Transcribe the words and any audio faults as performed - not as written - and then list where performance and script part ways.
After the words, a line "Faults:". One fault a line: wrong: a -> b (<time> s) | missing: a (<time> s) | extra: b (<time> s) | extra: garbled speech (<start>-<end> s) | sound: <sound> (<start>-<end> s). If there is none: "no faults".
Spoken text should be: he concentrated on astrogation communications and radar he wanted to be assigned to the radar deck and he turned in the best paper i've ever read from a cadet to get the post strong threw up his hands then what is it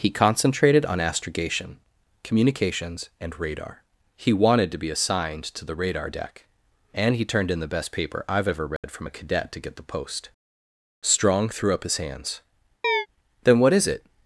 he concentrated on astrogation communications and radar he wanted to be assigned to the radar deck and he turned in the best paper i've ever read from a cadet to get the post strong threw up his hands then what is it
Faults:
sound: dropout (8.8-8.8 s)
sound: chirp (12.8-13.1 s)